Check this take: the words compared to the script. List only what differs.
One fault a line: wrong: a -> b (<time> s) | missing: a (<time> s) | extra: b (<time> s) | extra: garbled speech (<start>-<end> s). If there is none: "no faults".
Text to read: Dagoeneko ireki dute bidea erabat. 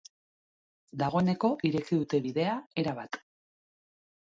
no faults